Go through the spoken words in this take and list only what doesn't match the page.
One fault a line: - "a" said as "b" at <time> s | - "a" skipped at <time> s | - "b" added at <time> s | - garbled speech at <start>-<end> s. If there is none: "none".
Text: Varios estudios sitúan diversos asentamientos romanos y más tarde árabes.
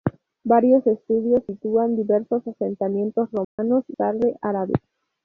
- "más" skipped at 4.0 s